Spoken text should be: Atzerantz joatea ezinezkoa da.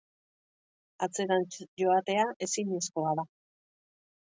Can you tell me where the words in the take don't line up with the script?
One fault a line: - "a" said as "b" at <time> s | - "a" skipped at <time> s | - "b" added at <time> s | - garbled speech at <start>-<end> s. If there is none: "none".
none